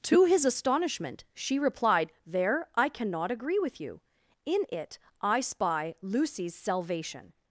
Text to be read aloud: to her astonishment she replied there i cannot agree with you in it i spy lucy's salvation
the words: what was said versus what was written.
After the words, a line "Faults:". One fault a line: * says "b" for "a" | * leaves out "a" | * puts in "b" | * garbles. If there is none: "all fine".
to his astonishment she replied there i cannot agree with you in it i spy lucy's salvation
Faults:
* says "his" for "her"